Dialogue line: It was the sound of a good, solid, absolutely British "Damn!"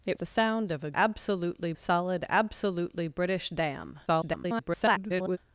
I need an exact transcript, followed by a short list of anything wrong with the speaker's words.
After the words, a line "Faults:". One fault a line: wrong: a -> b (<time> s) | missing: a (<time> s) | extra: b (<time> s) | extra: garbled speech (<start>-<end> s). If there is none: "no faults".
It the sound of a absolutely, solid, absolutely British "Damn!" [garbled]
Faults:
missing: was (0.2 s)
wrong: good -> absolutely (0.9 s)
extra: garbled speech (4.1-5.4 s)